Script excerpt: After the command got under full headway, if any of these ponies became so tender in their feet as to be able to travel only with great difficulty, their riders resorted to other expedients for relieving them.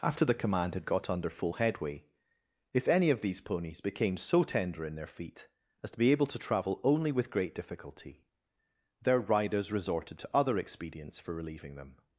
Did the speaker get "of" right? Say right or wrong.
right